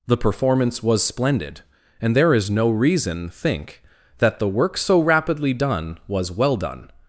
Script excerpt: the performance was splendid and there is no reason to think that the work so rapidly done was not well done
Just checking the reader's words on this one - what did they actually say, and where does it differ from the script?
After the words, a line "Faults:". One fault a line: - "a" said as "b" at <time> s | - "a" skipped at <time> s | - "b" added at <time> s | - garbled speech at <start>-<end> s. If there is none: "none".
the performance was splendid and there is no reason think that the work so rapidly done was well done
Faults:
- "to" skipped at 3.3 s
- "not" skipped at 6.3 s